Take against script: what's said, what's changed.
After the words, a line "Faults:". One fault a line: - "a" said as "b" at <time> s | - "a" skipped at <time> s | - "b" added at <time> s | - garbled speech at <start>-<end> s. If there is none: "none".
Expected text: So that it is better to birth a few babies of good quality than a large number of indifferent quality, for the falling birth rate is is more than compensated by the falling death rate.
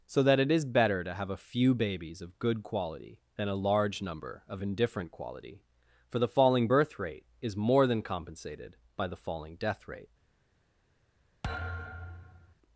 So that it is better to have a few babies of good quality than a large number of indifferent quality, for the falling birth rate is more than compensated by the falling death rate.
Faults:
- "birth" said as "have" at 1.1 s
- "is" skipped at 7.5 s